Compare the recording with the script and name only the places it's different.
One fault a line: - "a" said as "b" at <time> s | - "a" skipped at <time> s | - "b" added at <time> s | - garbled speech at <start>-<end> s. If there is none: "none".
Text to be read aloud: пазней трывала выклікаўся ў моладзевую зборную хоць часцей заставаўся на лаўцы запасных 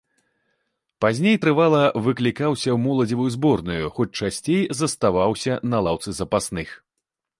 none